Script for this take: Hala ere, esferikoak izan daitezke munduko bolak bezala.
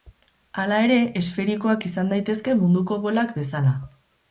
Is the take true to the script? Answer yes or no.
yes